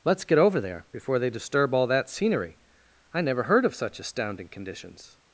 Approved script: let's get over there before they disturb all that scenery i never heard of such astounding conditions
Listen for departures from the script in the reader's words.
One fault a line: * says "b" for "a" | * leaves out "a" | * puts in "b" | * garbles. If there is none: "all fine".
all fine